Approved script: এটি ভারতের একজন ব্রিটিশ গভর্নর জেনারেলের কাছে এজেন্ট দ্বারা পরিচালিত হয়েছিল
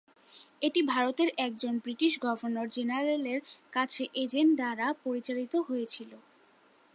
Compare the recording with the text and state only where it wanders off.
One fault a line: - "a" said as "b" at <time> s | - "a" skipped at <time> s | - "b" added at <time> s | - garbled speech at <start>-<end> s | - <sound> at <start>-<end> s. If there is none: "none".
none